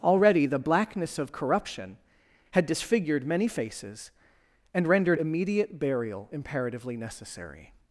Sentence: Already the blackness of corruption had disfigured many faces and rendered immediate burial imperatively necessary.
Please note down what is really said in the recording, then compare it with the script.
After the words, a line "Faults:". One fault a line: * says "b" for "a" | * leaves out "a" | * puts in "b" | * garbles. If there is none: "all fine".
Already the blackness of corruption had disfigured many faces and rendered immediate burial imperatively necessary.
Faults:
all fine